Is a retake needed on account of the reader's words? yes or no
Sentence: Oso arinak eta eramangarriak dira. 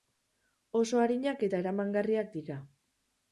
no